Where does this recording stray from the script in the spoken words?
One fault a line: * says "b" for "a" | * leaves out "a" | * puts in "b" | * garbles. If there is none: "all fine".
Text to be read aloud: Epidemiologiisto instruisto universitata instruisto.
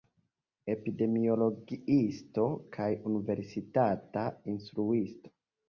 * says "kaj" for "instruisto"